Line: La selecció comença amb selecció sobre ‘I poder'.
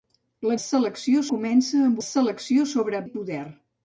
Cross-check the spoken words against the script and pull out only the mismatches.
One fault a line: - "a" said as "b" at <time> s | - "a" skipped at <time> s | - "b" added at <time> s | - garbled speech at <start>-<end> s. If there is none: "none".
none